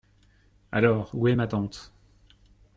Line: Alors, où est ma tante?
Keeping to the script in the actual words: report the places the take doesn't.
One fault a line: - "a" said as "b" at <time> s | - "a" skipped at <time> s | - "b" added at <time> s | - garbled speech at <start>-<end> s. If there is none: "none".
none